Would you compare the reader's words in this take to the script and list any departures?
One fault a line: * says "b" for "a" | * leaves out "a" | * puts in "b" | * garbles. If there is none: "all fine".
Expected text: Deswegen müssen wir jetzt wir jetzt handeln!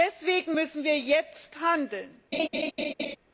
* leaves out "wir jetzt"